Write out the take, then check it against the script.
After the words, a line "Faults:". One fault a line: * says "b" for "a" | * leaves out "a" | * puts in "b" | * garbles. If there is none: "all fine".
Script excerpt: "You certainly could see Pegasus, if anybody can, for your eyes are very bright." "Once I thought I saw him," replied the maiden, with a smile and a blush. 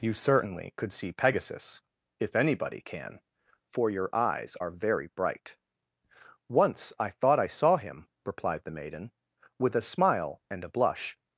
"You certainly could see Pegasus, if anybody can, for your eyes are very bright." "Once I thought I saw him," replied the maiden, with a smile and a blush.
Faults:
all fine